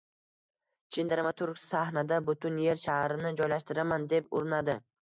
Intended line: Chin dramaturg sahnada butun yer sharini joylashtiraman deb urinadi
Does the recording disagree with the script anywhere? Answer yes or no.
no